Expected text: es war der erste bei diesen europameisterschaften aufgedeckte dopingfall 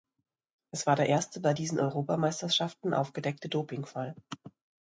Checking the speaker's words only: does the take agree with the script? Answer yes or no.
yes